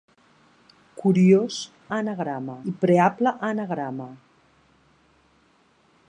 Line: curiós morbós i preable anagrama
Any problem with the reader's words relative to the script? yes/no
yes